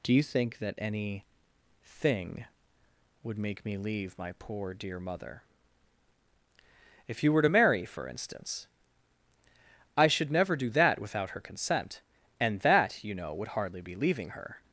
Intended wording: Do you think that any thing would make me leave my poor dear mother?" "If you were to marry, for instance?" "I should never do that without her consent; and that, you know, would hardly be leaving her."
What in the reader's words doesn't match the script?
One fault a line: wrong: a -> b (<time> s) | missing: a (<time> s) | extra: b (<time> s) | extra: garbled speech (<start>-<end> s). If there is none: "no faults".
no faults